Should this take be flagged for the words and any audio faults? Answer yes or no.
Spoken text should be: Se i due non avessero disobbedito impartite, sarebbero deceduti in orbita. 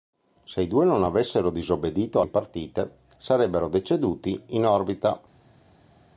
no